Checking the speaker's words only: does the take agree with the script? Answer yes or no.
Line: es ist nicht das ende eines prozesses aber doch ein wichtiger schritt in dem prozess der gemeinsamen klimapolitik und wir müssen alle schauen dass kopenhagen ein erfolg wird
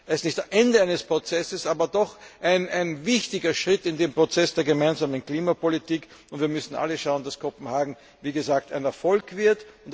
yes